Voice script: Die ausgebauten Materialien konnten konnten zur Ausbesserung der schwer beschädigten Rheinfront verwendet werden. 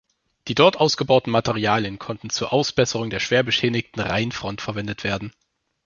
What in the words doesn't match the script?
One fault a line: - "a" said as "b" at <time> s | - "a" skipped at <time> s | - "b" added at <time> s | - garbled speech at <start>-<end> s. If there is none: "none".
- "dort" added at 0.6 s
- "konnten" skipped at 2.3 s